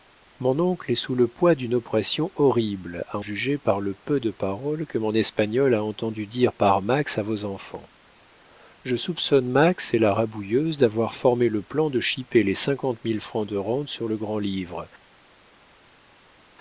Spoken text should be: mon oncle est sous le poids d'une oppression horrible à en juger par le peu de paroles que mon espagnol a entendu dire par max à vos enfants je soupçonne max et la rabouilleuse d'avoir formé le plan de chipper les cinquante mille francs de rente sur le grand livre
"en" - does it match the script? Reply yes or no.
no